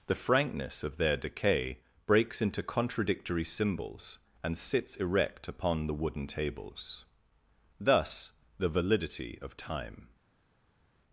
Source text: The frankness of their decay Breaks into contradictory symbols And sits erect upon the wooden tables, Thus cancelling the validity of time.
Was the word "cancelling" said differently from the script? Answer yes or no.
yes